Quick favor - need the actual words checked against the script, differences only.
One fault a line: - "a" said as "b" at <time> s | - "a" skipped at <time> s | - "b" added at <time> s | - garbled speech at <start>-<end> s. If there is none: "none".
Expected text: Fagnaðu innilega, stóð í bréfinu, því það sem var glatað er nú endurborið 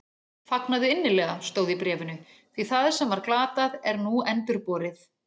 none